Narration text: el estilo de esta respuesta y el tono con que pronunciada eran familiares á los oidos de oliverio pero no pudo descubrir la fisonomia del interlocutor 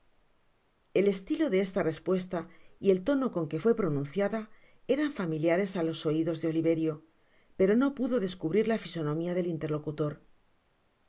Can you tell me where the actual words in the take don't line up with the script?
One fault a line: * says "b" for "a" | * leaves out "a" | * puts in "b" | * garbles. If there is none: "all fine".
* puts in "fué"